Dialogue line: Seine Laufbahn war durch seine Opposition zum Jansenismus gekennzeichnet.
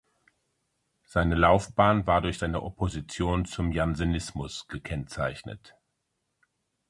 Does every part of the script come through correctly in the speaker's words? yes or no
yes